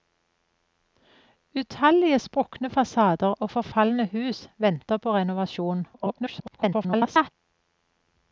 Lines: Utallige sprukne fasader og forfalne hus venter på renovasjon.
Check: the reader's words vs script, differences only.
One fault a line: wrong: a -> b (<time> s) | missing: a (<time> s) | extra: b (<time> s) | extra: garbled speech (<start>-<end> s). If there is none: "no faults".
extra: garbled speech (5.9-7.3 s)